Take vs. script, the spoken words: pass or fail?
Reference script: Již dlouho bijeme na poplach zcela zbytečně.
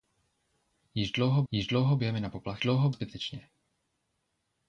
fail